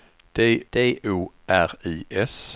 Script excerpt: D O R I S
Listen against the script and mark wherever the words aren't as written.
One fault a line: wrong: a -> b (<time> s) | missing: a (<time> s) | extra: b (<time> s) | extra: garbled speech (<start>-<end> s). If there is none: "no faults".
extra: d (0.7 s)